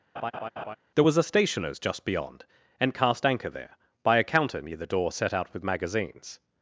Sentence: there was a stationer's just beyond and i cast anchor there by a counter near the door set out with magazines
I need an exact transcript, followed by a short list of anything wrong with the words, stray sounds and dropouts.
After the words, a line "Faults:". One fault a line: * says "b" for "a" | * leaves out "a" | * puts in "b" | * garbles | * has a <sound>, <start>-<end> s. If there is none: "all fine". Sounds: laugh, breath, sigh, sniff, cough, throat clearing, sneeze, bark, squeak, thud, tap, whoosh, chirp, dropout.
there was a stationer's just beyond and cast anchor there by a counter near the door set out with magazines
Faults:
* has a laugh, 0.2-0.8 s
* leaves out "i"